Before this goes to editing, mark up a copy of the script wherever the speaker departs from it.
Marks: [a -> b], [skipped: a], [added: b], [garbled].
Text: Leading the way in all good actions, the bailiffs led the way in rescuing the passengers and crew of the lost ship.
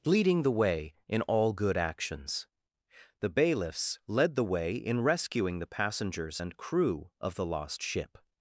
Leading the way in all good actions, the bailiffs led the way in rescuing the passengers and crew of the lost ship.